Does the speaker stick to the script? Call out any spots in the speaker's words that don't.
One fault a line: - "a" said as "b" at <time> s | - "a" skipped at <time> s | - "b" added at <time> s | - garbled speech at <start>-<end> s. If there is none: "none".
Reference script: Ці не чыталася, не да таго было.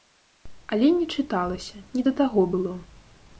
- "Ці" said as "Але" at 0.8 s